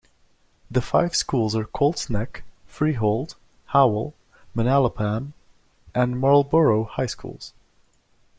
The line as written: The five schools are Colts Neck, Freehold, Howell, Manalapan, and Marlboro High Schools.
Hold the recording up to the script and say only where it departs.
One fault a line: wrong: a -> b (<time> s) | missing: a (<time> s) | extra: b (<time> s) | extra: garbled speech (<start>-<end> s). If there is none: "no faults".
no faults